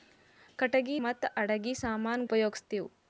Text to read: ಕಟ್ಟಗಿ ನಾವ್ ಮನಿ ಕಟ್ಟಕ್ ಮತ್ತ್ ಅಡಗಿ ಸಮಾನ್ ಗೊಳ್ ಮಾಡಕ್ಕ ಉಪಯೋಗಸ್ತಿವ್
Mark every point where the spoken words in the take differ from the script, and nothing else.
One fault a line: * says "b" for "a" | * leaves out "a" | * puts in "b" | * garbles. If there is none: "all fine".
* leaves out "ನಾವ್ ಮನಿ ಕಟ್ಟಕ್"
* leaves out "ಗೊಳ್ ಮಾಡಕ್ಕ"